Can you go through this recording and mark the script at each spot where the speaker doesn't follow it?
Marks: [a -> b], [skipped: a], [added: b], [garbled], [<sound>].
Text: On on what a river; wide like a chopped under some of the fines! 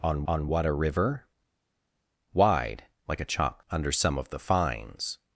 On on what a river; wide like a chopped under some of the fines!